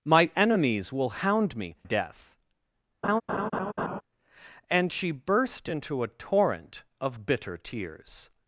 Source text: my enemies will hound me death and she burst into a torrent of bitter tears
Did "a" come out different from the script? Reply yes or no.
no